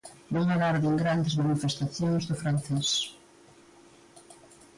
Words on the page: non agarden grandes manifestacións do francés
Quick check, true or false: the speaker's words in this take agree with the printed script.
true